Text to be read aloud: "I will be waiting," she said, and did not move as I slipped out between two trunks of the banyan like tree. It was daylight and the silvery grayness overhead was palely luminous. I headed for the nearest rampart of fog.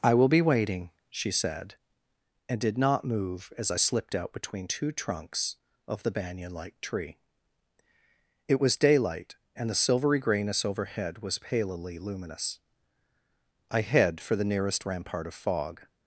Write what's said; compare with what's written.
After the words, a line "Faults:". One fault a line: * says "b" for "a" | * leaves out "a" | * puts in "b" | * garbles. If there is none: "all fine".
"I will be waiting," she said, and did not move as I slipped out between two trunks of the banyan like tree. It was daylight and the silvery grayness overhead was palely luminous. I head for the nearest rampart of fog.
Faults:
* says "head" for "headed"